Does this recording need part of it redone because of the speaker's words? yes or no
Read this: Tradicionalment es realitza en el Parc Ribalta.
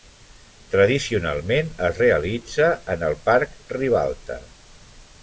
no